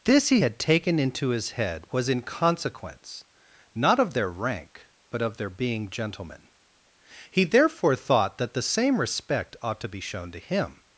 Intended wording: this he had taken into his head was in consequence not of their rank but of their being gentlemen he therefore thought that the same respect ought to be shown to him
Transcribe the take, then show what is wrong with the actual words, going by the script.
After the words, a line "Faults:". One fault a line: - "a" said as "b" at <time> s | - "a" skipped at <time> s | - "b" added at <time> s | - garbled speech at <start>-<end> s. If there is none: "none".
this he had taken into his head was in consequence not of their rank but of their being gentlemen he therefore thought that the same respect ought to be shown to him
Faults:
none